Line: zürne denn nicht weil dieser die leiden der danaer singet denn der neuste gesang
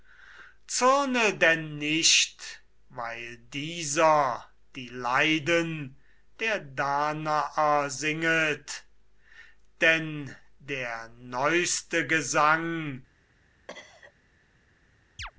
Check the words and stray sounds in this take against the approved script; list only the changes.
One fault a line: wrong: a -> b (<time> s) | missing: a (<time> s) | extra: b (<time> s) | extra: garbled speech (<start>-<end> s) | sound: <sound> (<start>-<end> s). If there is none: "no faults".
sound: cough (13.7-14.1 s)
sound: chirp (15.2-15.3 s)